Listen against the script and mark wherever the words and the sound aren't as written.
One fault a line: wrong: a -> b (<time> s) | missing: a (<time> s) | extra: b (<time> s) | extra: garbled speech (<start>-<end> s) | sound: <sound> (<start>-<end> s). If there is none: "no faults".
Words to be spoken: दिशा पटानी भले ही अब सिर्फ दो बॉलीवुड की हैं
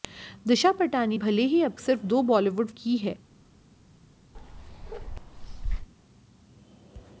sound: bark (4.3-5.9 s)